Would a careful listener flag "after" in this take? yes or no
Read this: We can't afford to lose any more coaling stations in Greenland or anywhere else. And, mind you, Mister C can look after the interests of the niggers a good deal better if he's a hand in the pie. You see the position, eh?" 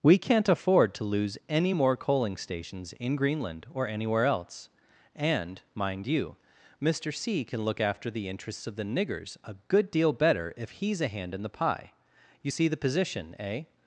no